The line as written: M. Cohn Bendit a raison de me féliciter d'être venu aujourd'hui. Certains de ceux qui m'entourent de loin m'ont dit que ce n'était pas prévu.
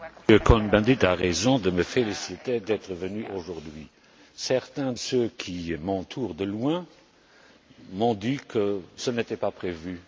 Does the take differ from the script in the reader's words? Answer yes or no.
yes